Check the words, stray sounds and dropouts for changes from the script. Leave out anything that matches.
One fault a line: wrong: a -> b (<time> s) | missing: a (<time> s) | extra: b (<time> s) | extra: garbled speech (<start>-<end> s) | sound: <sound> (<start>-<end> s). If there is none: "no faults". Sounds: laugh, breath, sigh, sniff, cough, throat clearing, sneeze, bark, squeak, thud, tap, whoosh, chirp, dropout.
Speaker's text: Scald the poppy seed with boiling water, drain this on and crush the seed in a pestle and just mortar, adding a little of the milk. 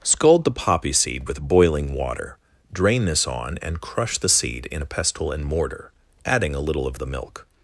missing: just (5.4 s)